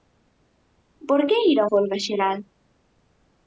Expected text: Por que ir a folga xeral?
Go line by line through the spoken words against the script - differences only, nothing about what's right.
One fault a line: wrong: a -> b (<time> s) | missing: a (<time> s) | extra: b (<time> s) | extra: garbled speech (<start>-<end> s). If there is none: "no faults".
no faults